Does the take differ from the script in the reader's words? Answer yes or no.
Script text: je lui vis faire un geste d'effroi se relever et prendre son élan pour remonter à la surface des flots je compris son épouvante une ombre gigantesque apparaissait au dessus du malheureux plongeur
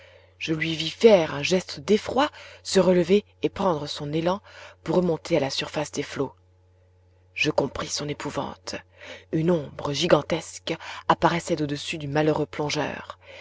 no